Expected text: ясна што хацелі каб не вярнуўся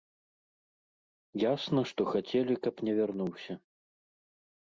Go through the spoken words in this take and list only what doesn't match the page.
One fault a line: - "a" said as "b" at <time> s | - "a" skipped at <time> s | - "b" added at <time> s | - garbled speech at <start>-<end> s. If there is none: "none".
none